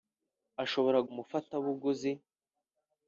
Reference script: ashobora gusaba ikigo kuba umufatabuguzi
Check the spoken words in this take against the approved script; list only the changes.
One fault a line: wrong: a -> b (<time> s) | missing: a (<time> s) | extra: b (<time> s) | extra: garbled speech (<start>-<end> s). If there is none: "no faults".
missing: gusaba ikigo kuba (1.0 s)